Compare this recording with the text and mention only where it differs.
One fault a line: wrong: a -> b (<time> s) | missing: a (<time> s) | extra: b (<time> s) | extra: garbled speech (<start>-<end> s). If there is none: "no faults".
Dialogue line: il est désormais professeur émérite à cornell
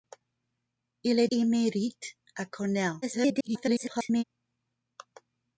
missing: désormais professeur (1.3 s)
extra: garbled speech (3.0-4.2 s)